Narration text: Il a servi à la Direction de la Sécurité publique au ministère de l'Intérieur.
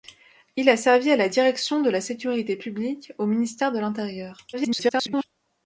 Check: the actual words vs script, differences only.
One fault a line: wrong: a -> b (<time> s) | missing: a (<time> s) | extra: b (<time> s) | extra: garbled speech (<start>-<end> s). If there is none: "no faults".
extra: garbled speech (4.5-5.2 s)